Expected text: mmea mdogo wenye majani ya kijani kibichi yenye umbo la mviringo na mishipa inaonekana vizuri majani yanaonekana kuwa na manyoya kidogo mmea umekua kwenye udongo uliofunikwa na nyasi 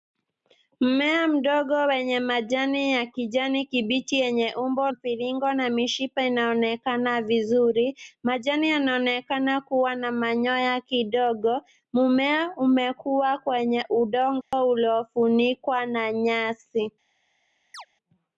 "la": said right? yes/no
no